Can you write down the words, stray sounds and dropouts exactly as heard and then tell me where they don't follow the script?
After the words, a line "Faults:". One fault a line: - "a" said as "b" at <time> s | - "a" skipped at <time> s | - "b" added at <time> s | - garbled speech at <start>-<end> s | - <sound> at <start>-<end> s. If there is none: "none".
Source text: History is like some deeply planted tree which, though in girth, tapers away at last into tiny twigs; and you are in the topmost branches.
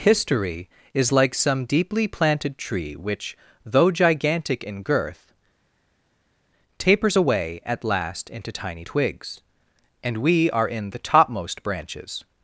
History is like some deeply planted tree which, though gigantic in girth, tapers away at last into tiny twigs; and we are in the topmost branches.
Faults:
- "gigantic" added at 3.9 s
- "you" said as "we" at 10.2 s